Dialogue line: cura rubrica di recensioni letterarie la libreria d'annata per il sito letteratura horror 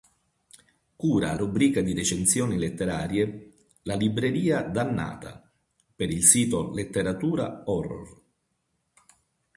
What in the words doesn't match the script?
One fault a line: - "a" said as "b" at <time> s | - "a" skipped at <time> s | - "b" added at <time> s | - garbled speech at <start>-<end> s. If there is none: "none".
none